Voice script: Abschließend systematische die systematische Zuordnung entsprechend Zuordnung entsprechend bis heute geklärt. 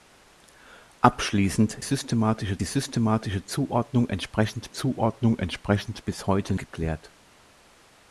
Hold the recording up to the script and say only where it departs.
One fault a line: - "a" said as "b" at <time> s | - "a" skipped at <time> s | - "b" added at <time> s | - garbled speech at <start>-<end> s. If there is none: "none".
none